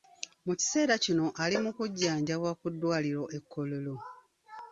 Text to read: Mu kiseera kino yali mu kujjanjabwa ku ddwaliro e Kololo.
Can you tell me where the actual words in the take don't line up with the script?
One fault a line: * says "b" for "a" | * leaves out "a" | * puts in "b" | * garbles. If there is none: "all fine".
* says "ali" for "yali"